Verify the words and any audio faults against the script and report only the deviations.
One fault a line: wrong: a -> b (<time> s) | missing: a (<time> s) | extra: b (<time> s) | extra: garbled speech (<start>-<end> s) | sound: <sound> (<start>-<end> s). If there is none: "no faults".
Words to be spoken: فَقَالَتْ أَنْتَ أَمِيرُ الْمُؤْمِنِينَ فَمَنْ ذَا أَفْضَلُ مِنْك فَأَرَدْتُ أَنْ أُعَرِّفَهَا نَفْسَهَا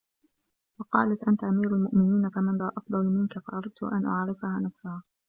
no faults